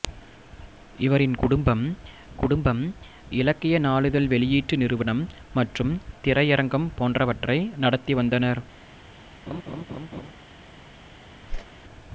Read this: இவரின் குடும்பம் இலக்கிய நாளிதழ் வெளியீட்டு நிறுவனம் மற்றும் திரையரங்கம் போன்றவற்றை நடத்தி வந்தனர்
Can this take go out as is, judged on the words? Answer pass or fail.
fail